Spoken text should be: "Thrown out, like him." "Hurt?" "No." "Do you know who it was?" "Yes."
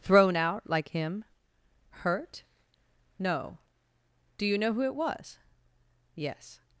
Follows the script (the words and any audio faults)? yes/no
yes